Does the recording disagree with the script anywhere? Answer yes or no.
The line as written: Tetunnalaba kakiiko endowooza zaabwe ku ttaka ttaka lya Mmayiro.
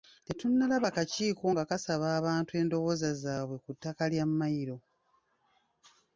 yes